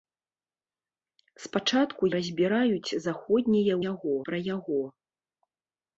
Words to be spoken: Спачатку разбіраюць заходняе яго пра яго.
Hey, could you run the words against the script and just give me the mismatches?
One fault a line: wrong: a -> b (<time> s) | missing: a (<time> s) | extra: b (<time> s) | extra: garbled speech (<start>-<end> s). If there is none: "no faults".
no faults